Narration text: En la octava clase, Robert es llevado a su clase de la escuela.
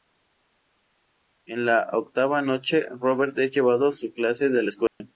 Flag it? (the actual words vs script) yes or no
yes